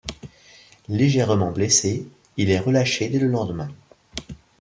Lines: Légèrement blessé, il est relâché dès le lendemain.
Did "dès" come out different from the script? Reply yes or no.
no